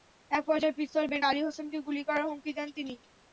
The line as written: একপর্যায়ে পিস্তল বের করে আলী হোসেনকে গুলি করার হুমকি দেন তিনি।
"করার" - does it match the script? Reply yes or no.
yes